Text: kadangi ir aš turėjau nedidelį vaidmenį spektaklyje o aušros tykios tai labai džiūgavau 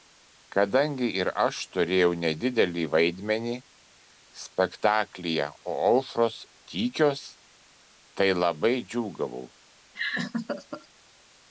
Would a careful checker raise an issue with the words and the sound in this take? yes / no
yes